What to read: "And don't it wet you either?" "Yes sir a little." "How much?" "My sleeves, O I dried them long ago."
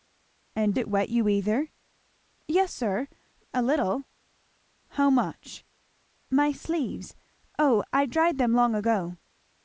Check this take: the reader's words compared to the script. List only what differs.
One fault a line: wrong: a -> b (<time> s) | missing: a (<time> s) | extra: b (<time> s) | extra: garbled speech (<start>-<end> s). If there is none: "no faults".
missing: don't (0.8 s)